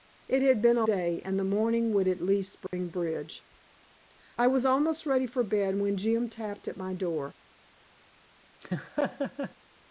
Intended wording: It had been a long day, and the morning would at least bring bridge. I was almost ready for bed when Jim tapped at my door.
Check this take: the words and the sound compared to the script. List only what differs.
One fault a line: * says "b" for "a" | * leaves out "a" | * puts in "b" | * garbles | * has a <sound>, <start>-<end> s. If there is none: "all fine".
* leaves out "long"
* has a dropout, 2.7-2.7 s
* has a laugh, 8.6-9.5 s